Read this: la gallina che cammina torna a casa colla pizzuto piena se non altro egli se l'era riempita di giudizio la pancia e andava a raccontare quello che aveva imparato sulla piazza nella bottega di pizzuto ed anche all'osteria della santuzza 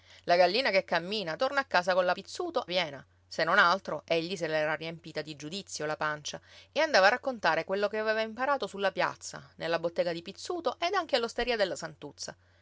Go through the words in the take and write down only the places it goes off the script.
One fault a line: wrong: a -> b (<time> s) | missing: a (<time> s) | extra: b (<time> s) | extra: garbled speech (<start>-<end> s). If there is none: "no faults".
no faults